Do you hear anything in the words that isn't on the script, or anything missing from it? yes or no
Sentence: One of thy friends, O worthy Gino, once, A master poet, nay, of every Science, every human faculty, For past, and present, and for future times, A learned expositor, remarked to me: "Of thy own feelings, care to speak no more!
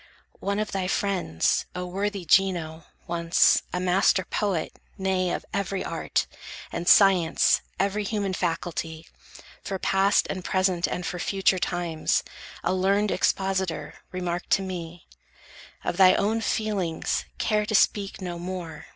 yes